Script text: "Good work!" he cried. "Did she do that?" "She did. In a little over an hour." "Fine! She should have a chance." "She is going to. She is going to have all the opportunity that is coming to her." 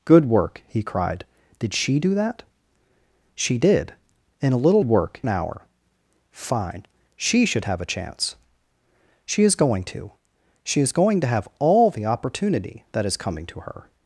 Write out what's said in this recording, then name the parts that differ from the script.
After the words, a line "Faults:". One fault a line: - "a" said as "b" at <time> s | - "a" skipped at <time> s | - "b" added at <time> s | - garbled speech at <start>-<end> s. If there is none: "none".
"Good work!" he cried. "Did she do that?" "She did. In a little work an hour." "Fine! She should have a chance." "She is going to. She is going to have all the opportunity that is coming to her."
Faults:
- "over" said as "work" at 4.8 s